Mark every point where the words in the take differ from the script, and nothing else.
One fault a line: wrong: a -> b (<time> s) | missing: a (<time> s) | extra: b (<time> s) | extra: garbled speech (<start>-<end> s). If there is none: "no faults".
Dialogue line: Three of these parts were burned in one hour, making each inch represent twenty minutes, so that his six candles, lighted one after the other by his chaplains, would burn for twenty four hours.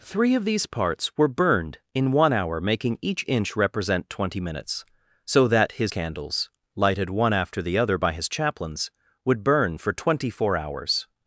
missing: six (5.9 s)